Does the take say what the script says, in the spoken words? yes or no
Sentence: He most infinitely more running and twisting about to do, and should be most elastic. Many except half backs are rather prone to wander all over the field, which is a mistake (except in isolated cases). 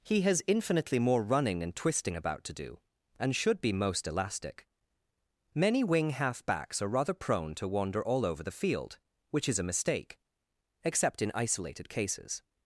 no